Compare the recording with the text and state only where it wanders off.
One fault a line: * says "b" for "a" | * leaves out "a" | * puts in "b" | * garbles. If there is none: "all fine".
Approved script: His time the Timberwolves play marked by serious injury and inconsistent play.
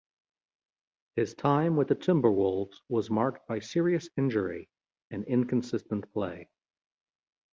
* puts in "with"
* says "was" for "play"